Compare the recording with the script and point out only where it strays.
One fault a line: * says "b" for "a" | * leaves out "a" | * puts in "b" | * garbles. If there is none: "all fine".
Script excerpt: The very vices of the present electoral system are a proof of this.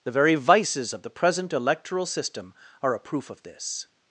all fine